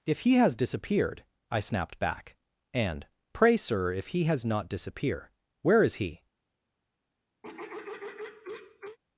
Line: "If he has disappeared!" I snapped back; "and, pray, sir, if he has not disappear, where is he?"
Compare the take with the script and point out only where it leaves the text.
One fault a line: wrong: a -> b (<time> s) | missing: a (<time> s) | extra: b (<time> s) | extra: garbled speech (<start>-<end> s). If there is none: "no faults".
no faults